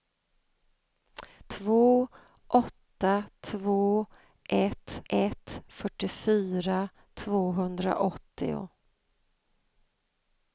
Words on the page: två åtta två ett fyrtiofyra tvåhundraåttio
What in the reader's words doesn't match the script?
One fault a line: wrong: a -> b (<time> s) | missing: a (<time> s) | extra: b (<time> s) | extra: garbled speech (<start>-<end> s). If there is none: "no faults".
extra: ett (5.1 s)